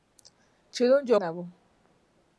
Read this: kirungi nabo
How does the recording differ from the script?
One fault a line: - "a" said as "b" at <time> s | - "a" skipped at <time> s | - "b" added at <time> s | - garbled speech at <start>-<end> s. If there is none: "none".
none